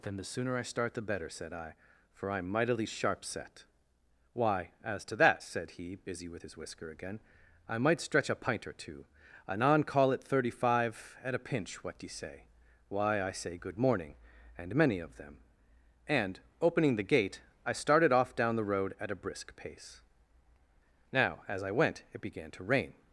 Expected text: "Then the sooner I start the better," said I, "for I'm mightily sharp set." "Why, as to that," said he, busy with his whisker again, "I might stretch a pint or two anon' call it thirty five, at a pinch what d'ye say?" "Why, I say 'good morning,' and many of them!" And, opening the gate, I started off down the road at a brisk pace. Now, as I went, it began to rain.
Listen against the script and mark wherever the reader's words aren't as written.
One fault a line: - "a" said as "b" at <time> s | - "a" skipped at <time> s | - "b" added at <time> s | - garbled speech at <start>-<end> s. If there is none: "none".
none